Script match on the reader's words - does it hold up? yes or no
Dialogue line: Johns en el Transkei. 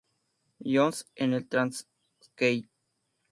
yes